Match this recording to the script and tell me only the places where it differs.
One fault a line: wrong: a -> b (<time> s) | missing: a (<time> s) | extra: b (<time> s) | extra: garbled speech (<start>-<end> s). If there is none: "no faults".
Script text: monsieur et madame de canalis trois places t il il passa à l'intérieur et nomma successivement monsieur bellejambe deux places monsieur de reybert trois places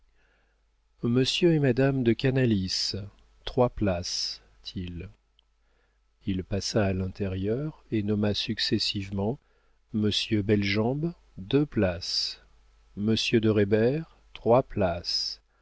no faults